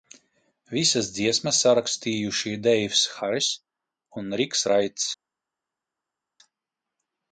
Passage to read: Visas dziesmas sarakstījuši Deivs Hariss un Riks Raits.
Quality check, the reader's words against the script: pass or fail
pass